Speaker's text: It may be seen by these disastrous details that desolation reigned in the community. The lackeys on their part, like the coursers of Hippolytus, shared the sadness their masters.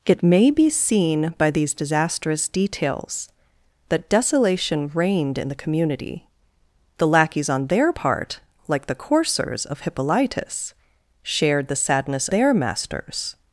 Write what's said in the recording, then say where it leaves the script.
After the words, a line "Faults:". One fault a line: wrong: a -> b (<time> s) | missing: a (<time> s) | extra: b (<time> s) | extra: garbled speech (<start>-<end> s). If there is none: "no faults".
It may be seen by these disastrous details that desolation reigned in the community. The lackeys on their part, like the coursers of Hippolytus, shared the sadness their masters.
Faults:
no faults